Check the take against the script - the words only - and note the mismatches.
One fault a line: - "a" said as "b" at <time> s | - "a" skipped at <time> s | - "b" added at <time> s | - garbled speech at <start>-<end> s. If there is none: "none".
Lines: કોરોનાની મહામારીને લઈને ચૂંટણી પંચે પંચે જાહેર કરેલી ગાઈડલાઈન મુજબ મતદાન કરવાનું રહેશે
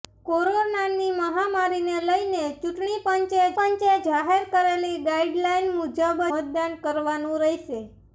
none